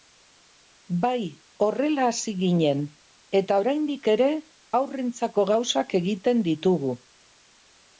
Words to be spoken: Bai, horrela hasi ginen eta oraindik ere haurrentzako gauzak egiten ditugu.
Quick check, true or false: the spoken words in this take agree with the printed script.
true